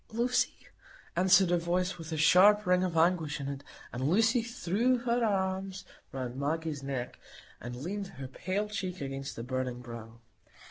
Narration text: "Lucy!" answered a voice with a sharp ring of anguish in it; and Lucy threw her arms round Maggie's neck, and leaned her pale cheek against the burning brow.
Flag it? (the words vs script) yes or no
no